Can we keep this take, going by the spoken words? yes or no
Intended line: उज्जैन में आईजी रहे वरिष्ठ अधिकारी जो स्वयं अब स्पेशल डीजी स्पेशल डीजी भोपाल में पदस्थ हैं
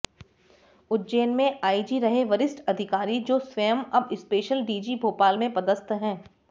no